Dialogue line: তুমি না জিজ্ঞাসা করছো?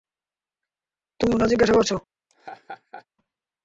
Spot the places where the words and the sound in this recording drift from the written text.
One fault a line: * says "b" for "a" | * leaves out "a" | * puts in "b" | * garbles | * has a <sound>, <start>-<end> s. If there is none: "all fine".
* has a laugh, 2.3-3.1 s